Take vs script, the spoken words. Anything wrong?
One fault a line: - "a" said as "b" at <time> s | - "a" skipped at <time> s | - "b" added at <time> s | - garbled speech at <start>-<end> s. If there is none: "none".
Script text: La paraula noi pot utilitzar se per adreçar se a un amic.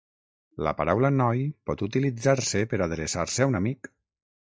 none